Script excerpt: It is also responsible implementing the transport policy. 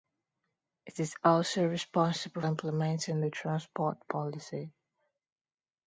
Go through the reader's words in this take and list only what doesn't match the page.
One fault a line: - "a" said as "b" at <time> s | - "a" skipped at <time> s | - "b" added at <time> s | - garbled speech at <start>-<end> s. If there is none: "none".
none